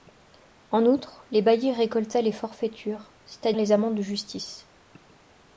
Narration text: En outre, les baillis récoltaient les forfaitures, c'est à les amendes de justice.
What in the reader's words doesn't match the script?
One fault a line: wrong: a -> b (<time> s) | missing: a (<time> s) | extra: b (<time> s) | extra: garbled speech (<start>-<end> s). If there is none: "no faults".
no faults